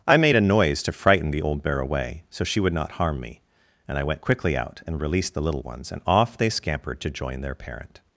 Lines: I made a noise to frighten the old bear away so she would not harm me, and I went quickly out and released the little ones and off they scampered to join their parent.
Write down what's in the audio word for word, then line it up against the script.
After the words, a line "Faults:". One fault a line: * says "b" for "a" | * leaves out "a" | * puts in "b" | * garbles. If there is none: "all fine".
I made a noise to frighten the old bear away so she would not harm me, and I went quickly out and released the little ones and off they scampered to join their parent.
Faults:
all fine